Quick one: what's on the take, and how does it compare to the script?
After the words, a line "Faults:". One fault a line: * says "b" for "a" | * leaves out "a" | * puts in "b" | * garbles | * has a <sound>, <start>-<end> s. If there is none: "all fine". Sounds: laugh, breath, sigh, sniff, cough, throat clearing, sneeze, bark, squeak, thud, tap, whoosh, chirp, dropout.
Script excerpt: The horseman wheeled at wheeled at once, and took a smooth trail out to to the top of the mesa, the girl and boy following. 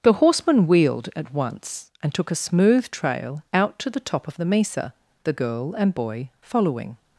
The horseman wheeled at once, and took a smooth trail out to the top of the mesa, the girl and boy following.
Faults:
* leaves out "wheeled at"
* leaves out "to"